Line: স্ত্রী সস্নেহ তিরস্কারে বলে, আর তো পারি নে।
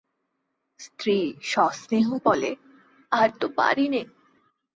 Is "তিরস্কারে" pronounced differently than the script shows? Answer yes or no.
yes